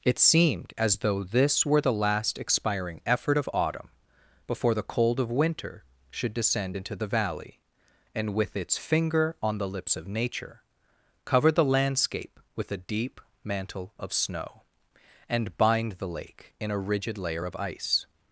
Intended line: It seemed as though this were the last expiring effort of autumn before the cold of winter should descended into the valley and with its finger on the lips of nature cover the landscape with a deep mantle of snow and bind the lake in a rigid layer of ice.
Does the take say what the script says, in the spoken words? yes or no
no